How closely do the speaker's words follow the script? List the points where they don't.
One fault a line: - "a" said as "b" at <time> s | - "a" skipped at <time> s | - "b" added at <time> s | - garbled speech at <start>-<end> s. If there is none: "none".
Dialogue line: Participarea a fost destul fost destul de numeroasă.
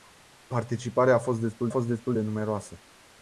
none